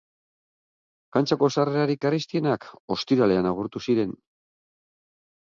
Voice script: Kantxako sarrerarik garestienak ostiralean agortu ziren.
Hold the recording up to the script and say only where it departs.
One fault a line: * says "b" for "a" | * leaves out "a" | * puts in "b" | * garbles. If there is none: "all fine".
all fine